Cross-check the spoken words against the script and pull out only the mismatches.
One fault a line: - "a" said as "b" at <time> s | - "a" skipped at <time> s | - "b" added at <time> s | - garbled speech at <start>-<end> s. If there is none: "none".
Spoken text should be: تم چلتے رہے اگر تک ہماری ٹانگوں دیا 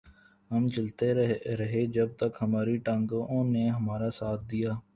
- "تم" said as "ہم" at 0.5 s
- "اگر" said as "جب" at 1.9 s
- "نے ہمارا ساتھ" added at 3.5 s